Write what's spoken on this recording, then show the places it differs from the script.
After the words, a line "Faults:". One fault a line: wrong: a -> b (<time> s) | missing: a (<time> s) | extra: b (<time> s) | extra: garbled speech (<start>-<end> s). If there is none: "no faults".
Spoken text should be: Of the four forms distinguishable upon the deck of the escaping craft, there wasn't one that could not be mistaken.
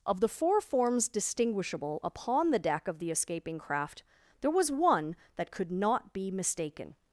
Of the four forms distinguishable upon the deck of the escaping craft, there was one that could not be mistaken.
Faults:
wrong: wasn't -> was (4.5 s)